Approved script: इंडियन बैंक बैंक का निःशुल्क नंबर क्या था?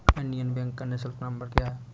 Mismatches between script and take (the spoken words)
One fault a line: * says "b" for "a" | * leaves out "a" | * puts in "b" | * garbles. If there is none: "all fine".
* leaves out "बैंक"
* says "है" for "था"